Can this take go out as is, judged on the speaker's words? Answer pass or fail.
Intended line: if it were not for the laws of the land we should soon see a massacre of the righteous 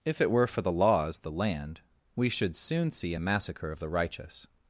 fail